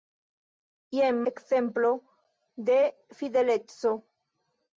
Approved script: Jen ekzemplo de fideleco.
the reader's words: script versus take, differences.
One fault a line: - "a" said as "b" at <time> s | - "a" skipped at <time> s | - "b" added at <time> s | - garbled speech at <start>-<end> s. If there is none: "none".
none